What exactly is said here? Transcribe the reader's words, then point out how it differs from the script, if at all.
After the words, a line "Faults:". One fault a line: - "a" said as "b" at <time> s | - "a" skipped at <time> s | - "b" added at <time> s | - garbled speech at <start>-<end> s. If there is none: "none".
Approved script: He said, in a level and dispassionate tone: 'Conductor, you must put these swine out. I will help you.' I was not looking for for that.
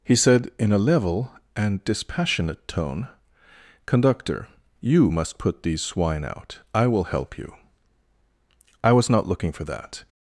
He said, in a level and dispassionate tone: 'Conductor, you must put these swine out. I will help you.' I was not looking for that.
Faults:
- "for" skipped at 9.6 s